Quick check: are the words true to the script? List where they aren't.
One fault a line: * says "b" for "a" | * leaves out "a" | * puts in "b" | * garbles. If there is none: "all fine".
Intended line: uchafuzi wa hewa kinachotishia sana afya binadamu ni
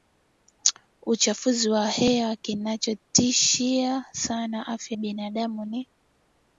all fine